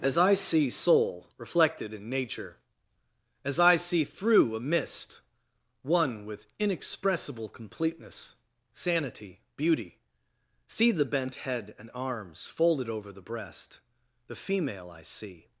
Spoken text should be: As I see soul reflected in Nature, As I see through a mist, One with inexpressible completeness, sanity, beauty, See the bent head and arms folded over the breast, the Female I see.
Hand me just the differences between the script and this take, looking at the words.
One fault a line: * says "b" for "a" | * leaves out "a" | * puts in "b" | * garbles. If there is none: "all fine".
all fine